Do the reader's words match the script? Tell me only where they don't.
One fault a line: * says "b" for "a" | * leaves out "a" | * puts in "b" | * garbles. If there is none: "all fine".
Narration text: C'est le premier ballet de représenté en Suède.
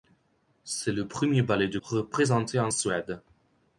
all fine